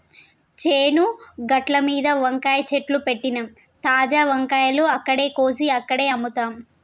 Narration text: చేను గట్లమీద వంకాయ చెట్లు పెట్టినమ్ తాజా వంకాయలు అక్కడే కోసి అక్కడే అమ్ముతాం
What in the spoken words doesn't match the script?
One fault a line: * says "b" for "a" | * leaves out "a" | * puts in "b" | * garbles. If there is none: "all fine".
all fine